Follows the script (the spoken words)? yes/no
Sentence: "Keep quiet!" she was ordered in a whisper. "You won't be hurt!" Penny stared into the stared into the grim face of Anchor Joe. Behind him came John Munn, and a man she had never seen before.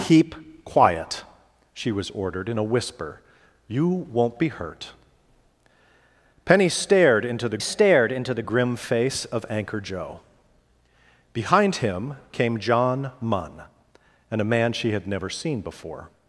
yes